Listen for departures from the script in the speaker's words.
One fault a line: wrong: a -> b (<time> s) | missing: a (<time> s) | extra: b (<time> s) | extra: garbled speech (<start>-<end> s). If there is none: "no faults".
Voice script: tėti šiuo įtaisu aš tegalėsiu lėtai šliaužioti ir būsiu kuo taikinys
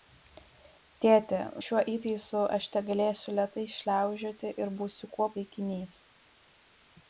no faults